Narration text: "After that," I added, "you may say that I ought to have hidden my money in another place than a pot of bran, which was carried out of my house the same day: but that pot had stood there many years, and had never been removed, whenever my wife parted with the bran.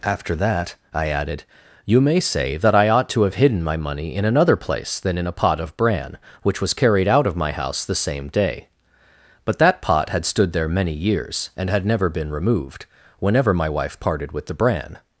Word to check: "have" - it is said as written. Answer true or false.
true